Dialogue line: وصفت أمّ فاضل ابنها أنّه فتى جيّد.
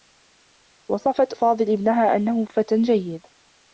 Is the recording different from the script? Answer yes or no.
yes